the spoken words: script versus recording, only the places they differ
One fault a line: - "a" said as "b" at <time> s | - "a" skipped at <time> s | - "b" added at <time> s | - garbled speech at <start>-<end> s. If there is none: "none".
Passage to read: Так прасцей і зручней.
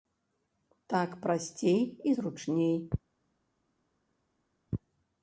none